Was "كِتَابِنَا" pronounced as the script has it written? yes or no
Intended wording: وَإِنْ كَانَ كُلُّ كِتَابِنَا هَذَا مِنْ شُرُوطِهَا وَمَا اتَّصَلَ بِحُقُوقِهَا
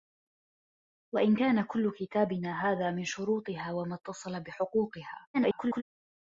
yes